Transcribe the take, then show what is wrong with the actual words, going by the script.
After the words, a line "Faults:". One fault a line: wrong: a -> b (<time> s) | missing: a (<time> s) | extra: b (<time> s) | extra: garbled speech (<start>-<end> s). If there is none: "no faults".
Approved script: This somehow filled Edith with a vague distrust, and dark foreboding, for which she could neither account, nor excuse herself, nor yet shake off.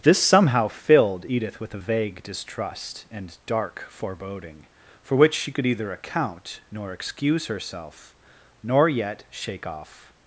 This somehow filled Edith with a vague distrust, and dark foreboding, for which she could either account, nor excuse herself, nor yet shake off.
Faults:
wrong: neither -> either (5.7 s)